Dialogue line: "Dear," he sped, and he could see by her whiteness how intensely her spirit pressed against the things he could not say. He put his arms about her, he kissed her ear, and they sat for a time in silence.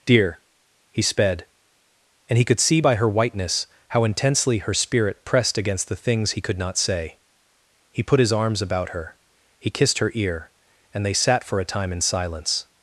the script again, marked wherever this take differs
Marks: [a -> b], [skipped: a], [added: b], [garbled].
"Dear," he sped, and he could see by her whiteness how intensely her spirit pressed against the things he could not say. He put his arms about her, he kissed her ear, and they sat for a time in silence.